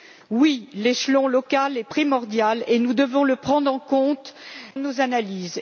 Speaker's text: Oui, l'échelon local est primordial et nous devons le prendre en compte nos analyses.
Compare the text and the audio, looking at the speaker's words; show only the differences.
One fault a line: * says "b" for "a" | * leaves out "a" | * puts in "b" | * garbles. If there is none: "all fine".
all fine